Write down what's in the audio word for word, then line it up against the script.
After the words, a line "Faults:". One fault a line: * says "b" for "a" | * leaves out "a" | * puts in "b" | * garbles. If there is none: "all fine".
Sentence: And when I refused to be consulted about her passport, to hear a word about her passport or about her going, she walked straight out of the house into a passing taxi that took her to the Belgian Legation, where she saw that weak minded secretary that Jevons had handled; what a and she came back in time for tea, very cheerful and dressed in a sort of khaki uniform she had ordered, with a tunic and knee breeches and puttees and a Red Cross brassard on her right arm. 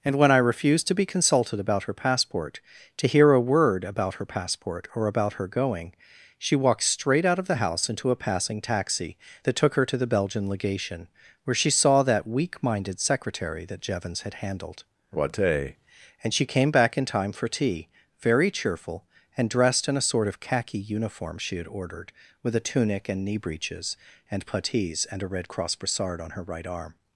And when I refused to be consulted about her passport, to hear a word about her passport or about her going, she walked straight out of the house into a passing taxi that took her to the Belgian Legation, where she saw that weak minded secretary that Jevons had handled; what a and she came back in time for tea, very cheerful and dressed in a sort of khaki uniform she had ordered, with a tunic and knee breeches and puttees and a Red Cross brassard on her right arm.
Faults:
all fine